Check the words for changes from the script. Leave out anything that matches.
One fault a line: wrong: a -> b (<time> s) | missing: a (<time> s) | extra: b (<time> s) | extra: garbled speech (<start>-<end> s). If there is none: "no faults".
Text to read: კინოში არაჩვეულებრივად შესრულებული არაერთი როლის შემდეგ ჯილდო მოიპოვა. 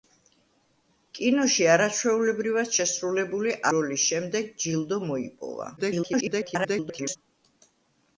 missing: არაერთი (3.6 s)
extra: garbled speech (5.8-7.2 s)